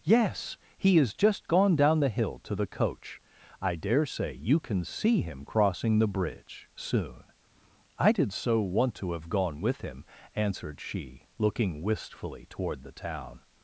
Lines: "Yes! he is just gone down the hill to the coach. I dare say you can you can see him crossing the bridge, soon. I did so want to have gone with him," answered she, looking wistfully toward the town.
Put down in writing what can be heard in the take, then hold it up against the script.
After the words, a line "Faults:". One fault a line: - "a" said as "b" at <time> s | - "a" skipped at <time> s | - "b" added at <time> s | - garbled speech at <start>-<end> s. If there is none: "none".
"Yes! he is just gone down the hill to the coach. I dare say you can see him crossing the bridge, soon. I did so want to have gone with him," answered she, looking wistfully toward the town.
Faults:
- "you can" skipped at 4.8 s